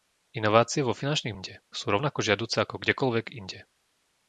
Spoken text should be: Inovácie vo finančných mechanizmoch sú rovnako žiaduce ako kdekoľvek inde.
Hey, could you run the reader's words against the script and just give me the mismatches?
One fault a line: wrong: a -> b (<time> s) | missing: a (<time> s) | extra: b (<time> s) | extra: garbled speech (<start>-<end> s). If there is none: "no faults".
wrong: mechanizmoch -> inde (1.3 s)